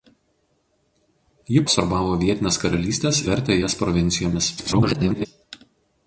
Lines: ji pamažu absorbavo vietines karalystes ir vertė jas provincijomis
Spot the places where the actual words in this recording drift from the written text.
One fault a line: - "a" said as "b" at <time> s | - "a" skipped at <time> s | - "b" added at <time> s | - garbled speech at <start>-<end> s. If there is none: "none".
- "pamažu" skipped at 1.6 s
- "ir" skipped at 3.2 s
- garbled speech at 4.6-5.3 s